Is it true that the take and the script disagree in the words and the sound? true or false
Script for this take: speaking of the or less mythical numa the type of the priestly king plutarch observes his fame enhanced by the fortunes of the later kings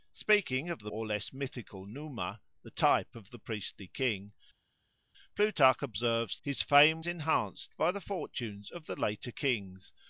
false